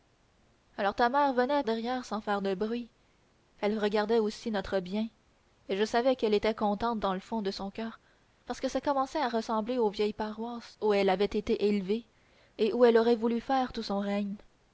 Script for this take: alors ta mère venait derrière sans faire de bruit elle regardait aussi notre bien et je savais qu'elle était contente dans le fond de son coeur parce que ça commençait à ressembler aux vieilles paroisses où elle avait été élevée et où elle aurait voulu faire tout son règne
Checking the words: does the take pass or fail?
pass